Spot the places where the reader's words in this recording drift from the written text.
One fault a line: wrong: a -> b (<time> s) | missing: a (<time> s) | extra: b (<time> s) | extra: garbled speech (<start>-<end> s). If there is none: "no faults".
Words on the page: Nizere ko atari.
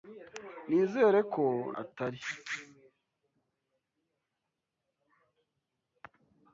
no faults